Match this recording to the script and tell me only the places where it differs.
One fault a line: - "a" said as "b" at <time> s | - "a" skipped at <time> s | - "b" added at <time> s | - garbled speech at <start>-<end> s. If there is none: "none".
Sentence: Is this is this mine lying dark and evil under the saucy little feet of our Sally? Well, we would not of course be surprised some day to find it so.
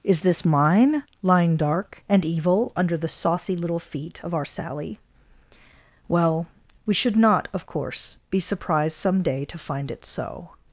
- "is this" skipped at 0.4 s
- "would" said as "should" at 6.9 s